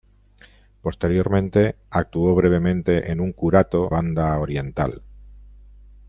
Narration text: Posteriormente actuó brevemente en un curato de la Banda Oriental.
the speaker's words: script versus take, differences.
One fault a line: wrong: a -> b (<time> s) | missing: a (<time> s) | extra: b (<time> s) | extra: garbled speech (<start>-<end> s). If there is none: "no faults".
missing: de la (3.9 s)